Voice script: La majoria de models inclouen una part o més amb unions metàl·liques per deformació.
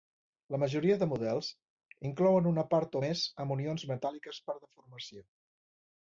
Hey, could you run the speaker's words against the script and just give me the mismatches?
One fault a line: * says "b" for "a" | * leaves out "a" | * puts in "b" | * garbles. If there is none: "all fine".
all fine